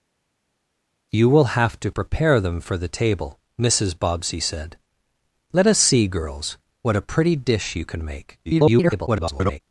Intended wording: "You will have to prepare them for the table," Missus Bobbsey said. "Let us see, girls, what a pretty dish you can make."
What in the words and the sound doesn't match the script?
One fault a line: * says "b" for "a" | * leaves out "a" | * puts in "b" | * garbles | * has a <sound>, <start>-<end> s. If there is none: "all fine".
* garbles